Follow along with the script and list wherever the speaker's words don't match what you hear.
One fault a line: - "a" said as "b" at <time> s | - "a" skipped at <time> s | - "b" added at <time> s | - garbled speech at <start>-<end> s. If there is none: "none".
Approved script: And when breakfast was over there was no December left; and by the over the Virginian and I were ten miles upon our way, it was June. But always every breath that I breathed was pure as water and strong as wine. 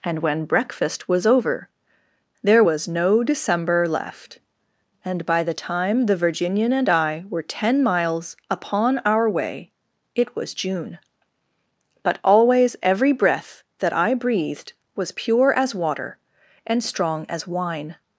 - "over" said as "time" at 5.5 s